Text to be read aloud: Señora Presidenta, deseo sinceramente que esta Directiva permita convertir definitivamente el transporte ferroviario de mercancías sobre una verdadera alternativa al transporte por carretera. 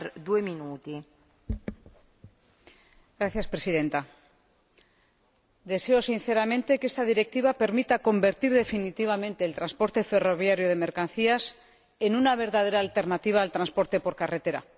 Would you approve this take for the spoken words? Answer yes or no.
no